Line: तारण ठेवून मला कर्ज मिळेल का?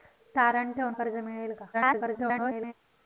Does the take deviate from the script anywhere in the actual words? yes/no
yes